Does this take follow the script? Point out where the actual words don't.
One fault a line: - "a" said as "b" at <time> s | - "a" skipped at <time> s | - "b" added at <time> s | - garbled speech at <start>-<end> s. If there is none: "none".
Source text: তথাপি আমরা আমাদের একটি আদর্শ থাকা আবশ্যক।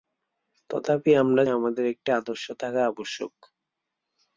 none